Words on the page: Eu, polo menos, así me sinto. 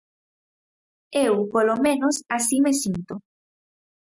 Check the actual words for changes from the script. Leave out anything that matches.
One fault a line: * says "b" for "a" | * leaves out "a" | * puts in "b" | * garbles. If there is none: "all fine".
all fine